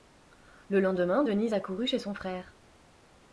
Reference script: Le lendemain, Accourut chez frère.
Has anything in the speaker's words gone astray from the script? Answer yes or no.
yes